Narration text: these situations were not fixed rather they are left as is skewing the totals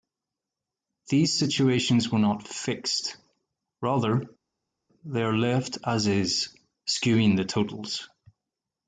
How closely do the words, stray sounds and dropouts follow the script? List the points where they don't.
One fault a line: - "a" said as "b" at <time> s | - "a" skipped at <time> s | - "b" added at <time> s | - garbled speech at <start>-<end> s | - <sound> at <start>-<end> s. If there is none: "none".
none